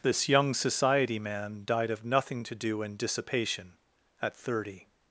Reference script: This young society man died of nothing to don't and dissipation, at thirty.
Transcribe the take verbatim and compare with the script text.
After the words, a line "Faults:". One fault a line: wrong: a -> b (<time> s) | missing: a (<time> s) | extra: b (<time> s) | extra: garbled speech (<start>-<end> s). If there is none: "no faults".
This young society man died of nothing to do and dissipation, at thirty.
Faults:
wrong: don't -> do (2.5 s)